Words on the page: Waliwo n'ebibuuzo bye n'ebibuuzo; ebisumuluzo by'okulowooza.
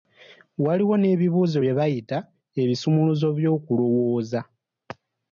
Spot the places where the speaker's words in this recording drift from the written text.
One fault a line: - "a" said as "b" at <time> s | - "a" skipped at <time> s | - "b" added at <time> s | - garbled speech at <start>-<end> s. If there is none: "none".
- "n'ebibuuzo" said as "bayita" at 1.8 s